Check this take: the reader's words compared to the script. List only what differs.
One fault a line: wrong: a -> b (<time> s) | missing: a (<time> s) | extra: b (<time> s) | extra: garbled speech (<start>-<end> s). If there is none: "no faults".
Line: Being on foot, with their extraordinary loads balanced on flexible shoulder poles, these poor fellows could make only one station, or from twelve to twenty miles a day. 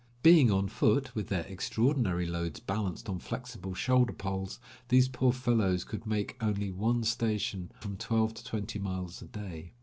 missing: or (7.7 s)